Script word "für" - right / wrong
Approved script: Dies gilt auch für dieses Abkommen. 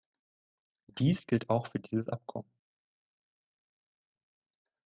right